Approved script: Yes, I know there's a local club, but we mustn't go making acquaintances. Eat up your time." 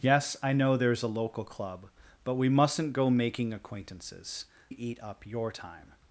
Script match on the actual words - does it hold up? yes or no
yes